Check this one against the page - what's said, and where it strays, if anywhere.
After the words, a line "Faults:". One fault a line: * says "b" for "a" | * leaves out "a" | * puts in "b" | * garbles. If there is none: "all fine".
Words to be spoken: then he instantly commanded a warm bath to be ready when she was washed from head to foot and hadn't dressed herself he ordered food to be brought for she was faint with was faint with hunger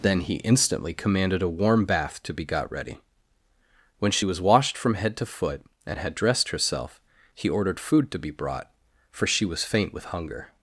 then he instantly commanded a warm bath to be got ready when she was washed from head to foot and had dressed herself he ordered food to be brought for she was faint with hunger
Faults:
* puts in "got"
* says "had" for "hadn't"
* leaves out "was faint with"